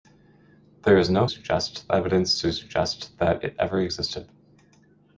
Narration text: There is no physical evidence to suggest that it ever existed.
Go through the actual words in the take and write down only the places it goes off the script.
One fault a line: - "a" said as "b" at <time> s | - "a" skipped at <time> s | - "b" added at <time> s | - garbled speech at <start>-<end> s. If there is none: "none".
- "physical" said as "suggest" at 1.3 s